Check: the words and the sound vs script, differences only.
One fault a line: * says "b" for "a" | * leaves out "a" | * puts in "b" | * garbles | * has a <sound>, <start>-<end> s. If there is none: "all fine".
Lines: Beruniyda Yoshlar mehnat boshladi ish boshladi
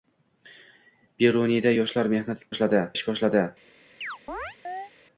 * has a chirp, 4.0-4.9 s